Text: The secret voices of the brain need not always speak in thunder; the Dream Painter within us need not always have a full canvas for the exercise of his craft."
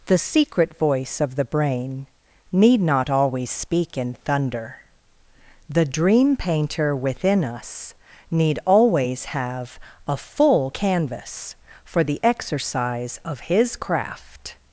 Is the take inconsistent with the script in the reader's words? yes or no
yes